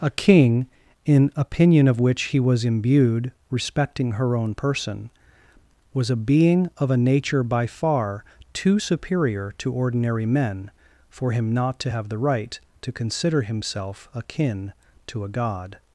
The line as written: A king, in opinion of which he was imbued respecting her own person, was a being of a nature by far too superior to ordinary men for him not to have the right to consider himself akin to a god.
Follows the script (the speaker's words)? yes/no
yes